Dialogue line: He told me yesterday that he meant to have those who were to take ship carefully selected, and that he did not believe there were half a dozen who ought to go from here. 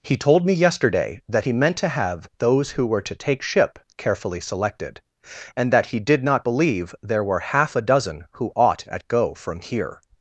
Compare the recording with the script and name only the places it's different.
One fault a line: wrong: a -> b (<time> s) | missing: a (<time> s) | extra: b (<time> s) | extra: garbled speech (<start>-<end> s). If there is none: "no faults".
wrong: to -> at (8.9 s)